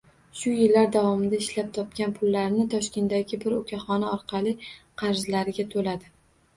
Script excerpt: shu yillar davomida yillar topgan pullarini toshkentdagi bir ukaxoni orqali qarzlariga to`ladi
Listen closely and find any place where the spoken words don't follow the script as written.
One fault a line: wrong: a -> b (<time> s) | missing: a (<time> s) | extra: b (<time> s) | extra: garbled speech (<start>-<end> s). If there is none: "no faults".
wrong: yillar -> ishlab (1.4 s)